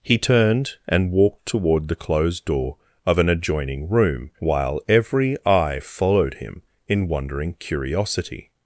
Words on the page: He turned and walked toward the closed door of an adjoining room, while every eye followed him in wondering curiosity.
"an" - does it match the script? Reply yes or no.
yes